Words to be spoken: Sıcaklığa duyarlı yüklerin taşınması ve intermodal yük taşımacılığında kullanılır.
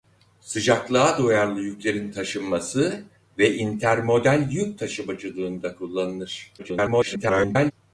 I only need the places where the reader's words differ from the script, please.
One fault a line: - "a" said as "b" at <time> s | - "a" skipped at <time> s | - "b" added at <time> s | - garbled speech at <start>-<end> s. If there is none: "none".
- garbled speech at 6.6-7.7 s